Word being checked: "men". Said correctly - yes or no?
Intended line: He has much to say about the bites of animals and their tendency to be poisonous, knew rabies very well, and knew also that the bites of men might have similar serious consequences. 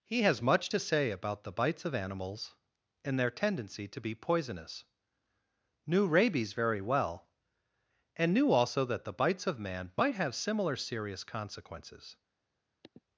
no